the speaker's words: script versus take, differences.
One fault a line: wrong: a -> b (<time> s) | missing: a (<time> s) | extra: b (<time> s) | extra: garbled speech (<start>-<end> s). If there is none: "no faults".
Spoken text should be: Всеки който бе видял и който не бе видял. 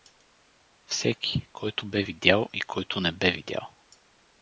no faults